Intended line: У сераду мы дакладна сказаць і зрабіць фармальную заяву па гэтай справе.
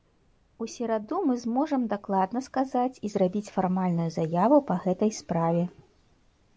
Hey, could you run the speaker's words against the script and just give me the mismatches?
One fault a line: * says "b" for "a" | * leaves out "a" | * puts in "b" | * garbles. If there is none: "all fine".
* puts in "зможам"